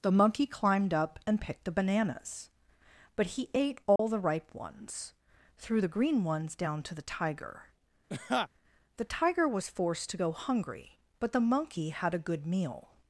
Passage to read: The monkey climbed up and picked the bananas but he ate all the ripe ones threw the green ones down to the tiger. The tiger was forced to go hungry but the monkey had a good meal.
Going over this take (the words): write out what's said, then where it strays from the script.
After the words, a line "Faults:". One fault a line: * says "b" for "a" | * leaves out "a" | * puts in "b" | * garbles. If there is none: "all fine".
The monkey climbed up and picked the bananas but he ate all the ripe ones threw the green ones down to the tiger. The tiger was forced to go hungry but the monkey had a good meal.
Faults:
all fine